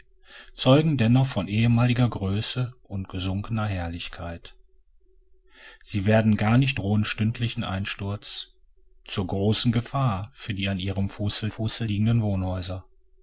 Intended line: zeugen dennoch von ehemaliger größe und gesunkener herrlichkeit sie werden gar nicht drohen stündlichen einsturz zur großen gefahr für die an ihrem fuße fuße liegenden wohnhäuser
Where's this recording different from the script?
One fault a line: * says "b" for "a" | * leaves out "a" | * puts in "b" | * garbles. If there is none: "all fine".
all fine